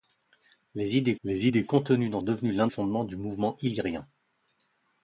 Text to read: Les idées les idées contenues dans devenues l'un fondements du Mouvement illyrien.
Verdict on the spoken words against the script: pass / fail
pass